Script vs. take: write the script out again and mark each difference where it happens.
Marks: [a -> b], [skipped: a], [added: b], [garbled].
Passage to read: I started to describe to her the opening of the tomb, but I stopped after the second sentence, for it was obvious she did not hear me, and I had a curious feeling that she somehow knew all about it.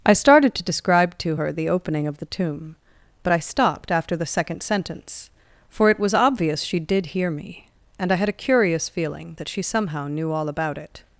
I started to describe to her the opening of the tomb, but I stopped after the second sentence, for it was obvious she did [skipped: not] hear me, and I had a curious feeling that she somehow knew all about it.